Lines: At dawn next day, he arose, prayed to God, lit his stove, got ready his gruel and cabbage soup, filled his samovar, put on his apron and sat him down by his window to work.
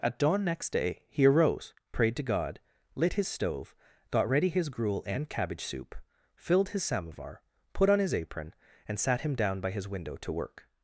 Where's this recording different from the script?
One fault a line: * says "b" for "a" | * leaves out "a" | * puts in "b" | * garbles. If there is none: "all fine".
all fine